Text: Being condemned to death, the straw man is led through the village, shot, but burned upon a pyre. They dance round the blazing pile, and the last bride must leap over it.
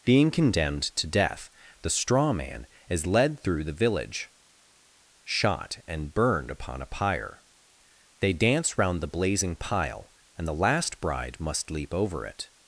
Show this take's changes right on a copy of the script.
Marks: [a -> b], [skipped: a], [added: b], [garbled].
Being condemned to death, the straw man is led through the village, shot, [but -> and] burned upon a pyre. They dance round the blazing pile, and the last bride must leap over it.